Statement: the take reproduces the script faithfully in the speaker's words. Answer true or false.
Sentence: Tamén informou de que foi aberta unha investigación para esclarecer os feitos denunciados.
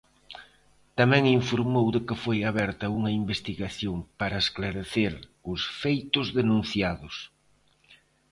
true